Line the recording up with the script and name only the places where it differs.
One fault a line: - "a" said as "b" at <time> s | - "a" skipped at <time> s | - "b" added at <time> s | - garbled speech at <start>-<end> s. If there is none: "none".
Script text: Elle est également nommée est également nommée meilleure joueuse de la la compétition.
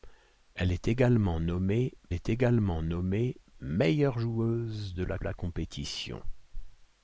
none